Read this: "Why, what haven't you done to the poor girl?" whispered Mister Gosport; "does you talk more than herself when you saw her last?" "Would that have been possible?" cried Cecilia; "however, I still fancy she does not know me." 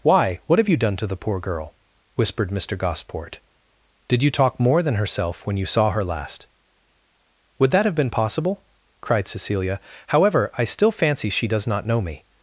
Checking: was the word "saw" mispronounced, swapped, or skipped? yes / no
no